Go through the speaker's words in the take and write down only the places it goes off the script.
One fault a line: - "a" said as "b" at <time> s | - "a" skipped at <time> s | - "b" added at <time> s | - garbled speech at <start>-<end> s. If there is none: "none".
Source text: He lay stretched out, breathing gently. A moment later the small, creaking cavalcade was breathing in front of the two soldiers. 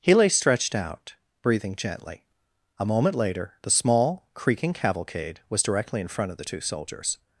- "breathing" said as "directly" at 5.6 s